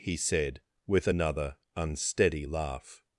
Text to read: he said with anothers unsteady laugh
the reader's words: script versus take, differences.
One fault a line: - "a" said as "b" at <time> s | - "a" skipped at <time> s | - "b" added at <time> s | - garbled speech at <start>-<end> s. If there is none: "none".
- "anothers" said as "another" at 1.1 s